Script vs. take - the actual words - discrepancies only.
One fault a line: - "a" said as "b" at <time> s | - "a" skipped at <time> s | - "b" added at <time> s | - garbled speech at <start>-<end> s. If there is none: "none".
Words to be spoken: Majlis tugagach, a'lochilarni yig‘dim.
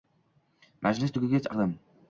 - "a'lochilarni" skipped at 1.5 s